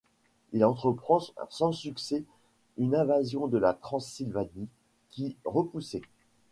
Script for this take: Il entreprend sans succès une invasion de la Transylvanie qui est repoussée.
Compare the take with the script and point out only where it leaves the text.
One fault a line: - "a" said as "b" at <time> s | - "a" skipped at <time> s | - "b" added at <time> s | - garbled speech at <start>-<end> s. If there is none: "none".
- "est" skipped at 5.4 s